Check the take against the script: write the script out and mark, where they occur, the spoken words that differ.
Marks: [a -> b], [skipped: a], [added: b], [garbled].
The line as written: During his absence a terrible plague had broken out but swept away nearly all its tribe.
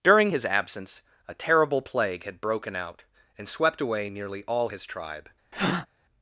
During his absence a terrible plague had broken out [but -> and] swept away nearly all [its -> his] tribe.